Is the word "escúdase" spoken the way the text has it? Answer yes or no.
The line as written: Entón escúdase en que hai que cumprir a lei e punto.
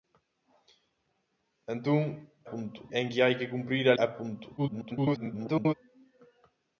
no